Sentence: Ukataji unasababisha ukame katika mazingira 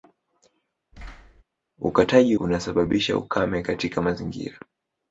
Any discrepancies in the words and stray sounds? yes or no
yes